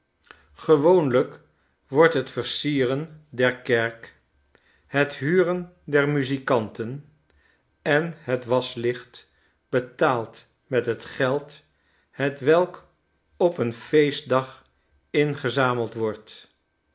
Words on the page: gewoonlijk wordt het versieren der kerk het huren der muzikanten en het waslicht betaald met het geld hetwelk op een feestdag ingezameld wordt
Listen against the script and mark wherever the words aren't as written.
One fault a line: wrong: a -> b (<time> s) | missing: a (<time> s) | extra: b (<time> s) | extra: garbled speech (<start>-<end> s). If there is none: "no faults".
no faults